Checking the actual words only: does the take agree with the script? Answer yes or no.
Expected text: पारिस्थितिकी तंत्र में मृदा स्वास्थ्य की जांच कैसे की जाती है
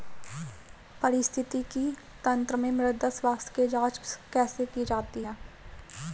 yes